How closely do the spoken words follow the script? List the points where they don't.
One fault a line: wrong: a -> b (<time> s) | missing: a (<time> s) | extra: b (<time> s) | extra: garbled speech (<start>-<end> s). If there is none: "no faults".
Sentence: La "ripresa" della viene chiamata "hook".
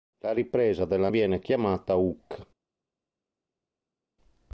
no faults